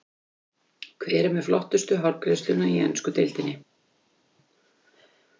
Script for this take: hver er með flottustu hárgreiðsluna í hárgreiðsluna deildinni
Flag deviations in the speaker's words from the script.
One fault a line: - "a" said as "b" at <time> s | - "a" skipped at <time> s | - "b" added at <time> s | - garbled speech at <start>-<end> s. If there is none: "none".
- "hárgreiðsluna" said as "ensku" at 2.9 s